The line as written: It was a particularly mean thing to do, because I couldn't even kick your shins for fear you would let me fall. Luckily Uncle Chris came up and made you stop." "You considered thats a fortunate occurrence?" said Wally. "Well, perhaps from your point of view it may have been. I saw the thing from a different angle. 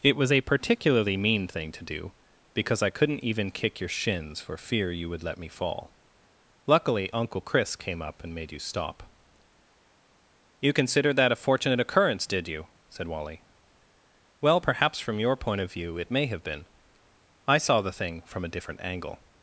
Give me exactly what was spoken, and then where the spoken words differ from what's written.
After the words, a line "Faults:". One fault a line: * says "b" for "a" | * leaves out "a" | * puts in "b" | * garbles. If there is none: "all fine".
It was a particularly mean thing to do, because I couldn't even kick your shins for fear you would let me fall. Luckily Uncle Chris came up and made you stop." "You considered that a fortunate occurrence, did you?" said Wally. "Well, perhaps from your point of view it may have been. I saw the thing from a different angle.
Faults:
* says "that" for "thats"
* puts in "did you"